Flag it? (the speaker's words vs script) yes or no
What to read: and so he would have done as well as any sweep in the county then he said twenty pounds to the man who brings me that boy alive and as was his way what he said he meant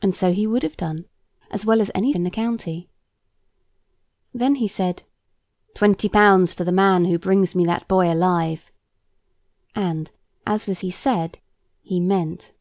yes